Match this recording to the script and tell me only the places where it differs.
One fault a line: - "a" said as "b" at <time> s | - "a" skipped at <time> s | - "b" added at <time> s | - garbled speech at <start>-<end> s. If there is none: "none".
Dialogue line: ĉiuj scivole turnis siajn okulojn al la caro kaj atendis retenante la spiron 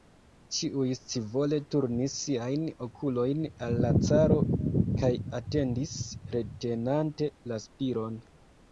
none